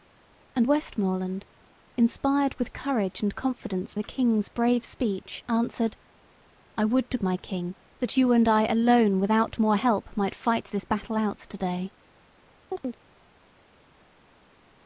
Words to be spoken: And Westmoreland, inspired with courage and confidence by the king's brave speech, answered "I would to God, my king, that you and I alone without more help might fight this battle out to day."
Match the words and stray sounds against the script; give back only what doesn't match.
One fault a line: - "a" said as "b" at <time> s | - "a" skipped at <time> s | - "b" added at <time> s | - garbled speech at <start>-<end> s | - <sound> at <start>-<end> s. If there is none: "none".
- "by" skipped at 3.9 s
- "God" skipped at 7.2 s
- chirp at 12.7-13.0 s